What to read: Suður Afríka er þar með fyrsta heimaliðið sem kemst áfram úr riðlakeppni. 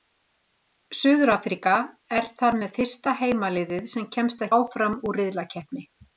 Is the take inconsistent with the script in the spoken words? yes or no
no